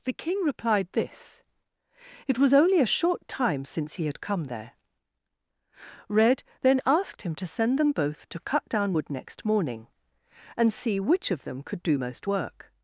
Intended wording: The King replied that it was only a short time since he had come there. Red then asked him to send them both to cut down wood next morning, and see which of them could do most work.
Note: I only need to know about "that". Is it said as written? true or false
false